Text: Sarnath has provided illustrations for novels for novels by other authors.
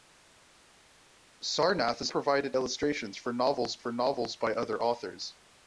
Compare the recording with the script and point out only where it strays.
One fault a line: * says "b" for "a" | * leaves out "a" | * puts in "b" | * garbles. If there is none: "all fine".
all fine